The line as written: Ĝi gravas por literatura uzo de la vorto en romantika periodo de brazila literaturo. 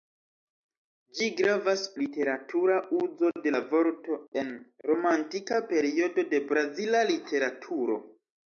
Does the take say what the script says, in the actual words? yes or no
no